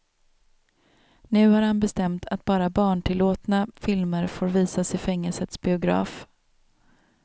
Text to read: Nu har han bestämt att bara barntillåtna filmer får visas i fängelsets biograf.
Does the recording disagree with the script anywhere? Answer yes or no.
no